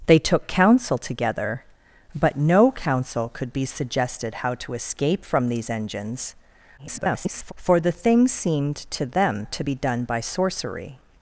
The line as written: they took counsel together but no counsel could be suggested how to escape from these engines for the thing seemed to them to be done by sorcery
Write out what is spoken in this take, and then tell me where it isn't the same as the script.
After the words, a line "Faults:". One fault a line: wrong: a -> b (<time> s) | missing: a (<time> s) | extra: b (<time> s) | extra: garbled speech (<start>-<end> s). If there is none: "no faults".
they took counsel together but no counsel could be suggested how to escape from these engines [garbled] for the thing seemed to them to be done by sorcery
Faults:
extra: garbled speech (6.8-7.5 s)